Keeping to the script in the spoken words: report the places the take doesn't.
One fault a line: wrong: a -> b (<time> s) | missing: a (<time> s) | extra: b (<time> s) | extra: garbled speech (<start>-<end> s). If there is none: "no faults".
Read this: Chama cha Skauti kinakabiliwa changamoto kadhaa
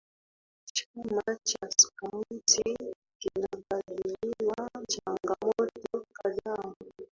no faults